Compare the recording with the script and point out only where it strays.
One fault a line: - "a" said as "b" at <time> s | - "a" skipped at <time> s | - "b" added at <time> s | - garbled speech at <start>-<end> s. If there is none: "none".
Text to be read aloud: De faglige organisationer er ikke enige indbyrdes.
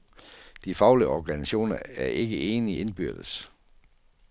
none